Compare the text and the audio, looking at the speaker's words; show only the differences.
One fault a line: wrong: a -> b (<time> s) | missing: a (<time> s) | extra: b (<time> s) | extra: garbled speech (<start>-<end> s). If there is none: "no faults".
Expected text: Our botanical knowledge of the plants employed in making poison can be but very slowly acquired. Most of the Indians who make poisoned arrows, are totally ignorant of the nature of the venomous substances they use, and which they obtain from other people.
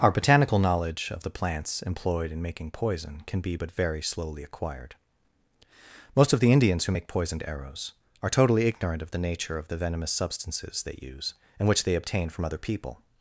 no faults